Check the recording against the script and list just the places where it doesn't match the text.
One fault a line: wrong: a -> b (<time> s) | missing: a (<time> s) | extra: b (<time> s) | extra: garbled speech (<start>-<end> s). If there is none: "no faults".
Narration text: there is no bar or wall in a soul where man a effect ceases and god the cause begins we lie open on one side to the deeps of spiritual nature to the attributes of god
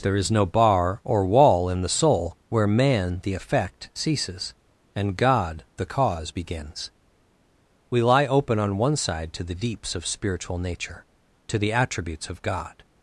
wrong: a -> the (1.8 s)
wrong: a -> the (3.2 s)